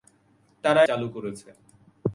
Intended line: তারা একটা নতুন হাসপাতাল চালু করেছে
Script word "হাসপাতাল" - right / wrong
wrong